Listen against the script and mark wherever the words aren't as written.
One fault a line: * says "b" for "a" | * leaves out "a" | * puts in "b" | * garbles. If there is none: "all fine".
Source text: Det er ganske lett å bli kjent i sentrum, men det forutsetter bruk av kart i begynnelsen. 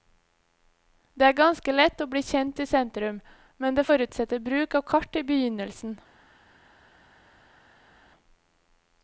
all fine